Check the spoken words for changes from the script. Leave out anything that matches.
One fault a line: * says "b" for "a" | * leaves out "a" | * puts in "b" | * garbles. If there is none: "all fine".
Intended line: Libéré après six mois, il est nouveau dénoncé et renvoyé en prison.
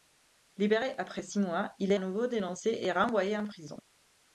all fine